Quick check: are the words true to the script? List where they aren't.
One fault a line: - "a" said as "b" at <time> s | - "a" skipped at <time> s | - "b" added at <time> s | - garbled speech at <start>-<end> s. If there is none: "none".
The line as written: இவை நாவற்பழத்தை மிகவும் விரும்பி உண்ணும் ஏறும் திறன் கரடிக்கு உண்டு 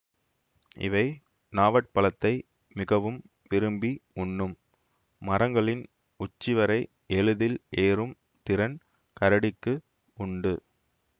- "மரங்களின் உச்சிவரை எளிதில்" added at 5.2 s